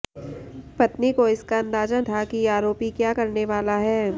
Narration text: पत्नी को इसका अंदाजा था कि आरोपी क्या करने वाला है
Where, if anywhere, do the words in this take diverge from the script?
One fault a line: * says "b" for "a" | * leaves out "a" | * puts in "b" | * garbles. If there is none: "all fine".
all fine